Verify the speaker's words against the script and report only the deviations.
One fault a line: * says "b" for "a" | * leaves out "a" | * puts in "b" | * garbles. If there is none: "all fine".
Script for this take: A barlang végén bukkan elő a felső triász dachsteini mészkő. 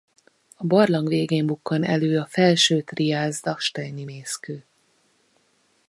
all fine